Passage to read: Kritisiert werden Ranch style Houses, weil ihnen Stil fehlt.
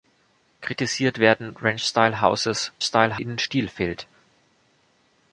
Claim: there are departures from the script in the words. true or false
true